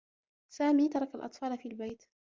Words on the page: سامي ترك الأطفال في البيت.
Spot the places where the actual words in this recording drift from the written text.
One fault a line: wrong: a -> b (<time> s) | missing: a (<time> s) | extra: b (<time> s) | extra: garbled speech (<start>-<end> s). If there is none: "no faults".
no faults